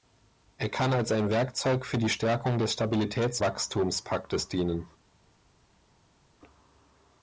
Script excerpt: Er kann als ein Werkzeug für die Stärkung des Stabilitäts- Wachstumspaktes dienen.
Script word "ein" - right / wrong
right